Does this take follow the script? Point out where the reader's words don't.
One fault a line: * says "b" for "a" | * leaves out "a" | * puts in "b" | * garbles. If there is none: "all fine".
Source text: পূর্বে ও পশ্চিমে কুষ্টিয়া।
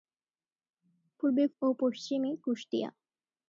all fine